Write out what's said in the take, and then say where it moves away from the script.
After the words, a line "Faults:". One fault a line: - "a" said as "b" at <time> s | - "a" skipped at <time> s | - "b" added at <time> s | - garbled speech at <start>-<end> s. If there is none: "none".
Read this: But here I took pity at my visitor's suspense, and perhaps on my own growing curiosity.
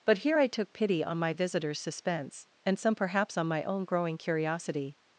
But here I took pity on my visitor's suspense, and some perhaps on my own growing curiosity.
Faults:
- "at" said as "on" at 1.0 s
- "some" added at 2.8 s